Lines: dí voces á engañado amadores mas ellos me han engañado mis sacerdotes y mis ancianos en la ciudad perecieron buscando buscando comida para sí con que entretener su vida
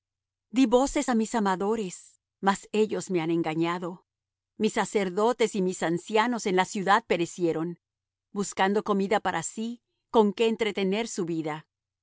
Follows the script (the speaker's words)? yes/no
no